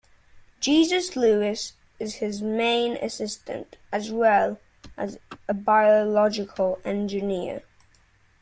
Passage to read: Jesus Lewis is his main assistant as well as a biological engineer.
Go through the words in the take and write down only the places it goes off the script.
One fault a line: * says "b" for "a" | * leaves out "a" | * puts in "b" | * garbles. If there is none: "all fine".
all fine